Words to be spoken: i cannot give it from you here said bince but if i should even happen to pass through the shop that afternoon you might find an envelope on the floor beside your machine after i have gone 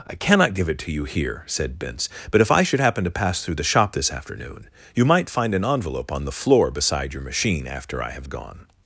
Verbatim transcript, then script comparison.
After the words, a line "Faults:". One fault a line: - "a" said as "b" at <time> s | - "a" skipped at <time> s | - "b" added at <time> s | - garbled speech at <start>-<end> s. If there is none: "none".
i cannot give it to you here said bince but if i should happen to pass through the shop this afternoon you might find an envelope on the floor beside your machine after i have gone
Faults:
- "from" said as "to" at 0.8 s
- "even" skipped at 2.8 s
- "that" said as "this" at 3.9 s